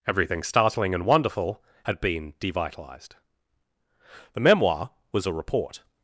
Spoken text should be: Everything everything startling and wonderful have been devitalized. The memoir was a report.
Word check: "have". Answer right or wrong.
wrong